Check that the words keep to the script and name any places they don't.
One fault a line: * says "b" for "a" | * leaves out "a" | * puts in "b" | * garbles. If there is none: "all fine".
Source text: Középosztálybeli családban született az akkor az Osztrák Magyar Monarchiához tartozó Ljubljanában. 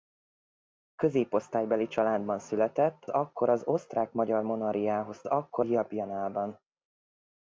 * leaves out "az"
* says "akkor" for "tartozó"